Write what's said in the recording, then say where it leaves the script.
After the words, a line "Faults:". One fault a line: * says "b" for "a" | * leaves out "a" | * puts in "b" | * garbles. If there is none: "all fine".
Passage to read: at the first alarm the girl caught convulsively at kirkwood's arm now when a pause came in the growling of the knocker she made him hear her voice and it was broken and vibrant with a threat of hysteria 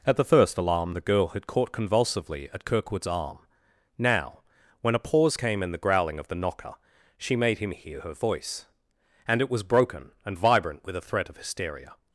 at the first alarm the girl had caught convulsively at kirkwood's arm now when a pause came in the growling of the knocker she made him hear her voice and it was broken and vibrant with a threat of hysteria
Faults:
* puts in "had"